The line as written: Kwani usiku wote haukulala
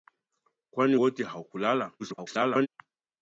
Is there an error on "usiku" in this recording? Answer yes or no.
yes